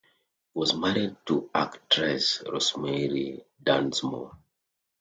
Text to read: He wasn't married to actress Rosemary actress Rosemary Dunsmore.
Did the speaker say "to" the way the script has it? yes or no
yes